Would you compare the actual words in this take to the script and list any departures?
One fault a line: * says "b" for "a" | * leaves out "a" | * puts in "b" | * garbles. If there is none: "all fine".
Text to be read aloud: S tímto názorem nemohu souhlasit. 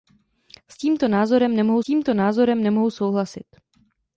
* puts in "tímto názorem nemohu"